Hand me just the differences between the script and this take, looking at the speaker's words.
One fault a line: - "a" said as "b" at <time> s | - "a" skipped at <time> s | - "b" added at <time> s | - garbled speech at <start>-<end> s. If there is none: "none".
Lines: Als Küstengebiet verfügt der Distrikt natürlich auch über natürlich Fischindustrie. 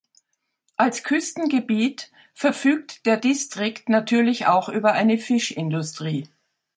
- "natürlich" said as "eine" at 4.9 s